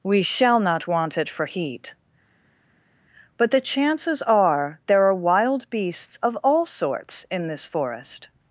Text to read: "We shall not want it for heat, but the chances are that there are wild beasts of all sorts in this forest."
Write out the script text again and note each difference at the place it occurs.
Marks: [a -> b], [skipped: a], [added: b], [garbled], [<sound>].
"We shall not want it for heat, but the chances are [skipped: that] there are wild beasts of all sorts in this forest."